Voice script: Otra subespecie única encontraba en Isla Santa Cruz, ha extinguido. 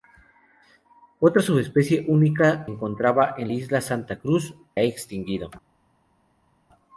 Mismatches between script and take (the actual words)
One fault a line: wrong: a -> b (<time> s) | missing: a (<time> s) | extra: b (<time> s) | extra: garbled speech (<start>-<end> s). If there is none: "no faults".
no faults